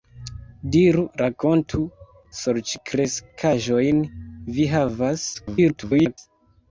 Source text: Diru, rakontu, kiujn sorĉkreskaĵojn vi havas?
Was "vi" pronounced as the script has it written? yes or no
yes